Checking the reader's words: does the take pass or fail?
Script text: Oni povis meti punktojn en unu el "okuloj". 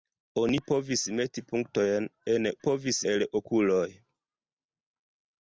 fail